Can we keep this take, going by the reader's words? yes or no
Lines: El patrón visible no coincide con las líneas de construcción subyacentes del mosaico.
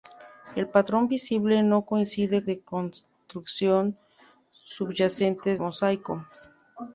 no